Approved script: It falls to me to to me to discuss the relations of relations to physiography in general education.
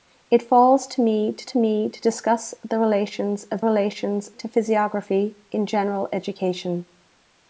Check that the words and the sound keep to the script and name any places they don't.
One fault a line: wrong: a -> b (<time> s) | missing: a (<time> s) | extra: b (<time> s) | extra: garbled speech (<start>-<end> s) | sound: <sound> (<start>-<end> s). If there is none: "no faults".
no faults